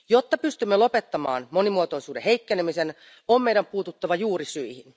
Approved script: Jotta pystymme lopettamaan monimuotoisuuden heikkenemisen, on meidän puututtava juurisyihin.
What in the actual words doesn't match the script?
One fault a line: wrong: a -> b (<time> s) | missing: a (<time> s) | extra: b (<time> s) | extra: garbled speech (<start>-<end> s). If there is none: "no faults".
no faults